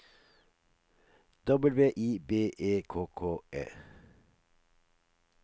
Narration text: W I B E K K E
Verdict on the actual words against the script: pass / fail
pass